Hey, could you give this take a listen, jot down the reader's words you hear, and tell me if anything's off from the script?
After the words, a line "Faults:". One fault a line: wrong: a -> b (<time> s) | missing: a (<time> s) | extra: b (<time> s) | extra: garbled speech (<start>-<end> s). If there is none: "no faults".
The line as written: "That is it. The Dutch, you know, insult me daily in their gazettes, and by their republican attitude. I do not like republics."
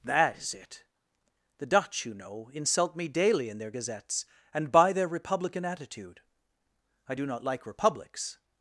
"That is it. The Dutch, you know, insult me daily in their gazettes, and by their republican attitude. I do not like republics."
Faults:
no faults